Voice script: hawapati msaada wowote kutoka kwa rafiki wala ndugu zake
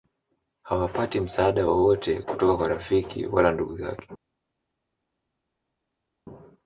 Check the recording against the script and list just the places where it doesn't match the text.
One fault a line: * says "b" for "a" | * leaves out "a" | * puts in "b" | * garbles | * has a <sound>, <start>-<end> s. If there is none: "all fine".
all fine